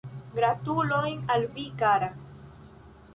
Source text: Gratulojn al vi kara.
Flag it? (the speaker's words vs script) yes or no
no